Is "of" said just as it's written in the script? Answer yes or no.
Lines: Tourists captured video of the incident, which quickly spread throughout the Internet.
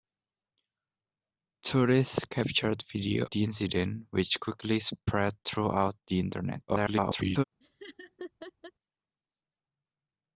no